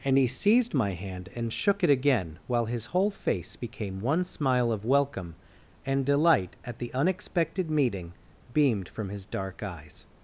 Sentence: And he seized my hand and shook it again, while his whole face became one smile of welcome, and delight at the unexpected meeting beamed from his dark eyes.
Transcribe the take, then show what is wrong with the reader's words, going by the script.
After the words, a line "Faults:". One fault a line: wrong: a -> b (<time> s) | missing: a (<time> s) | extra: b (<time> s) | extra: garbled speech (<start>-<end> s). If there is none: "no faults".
And he seized my hand and shook it again, while his whole face became one smile of welcome, and delight at the unexpected meeting beamed from his dark eyes.
Faults:
no faults